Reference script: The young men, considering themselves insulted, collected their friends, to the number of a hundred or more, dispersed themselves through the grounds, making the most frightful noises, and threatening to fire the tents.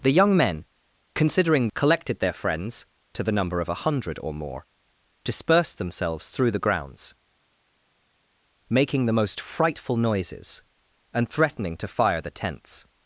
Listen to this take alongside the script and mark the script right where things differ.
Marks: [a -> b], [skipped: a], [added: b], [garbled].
The young men, considering [skipped: themselves insulted,] collected their friends, to the number of a hundred or more, dispersed themselves through the grounds, making the most frightful noises, and threatening to fire the tents.